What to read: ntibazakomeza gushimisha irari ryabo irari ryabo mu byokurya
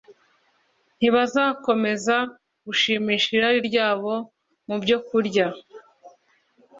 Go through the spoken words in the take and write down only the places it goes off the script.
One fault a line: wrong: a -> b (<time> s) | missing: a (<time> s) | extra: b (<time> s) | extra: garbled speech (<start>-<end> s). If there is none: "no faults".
missing: irari ryabo (4.1 s)